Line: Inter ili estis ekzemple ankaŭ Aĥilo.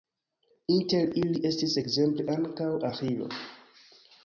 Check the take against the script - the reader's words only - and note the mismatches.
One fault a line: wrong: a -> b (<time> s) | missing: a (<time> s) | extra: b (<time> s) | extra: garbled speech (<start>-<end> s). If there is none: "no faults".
no faults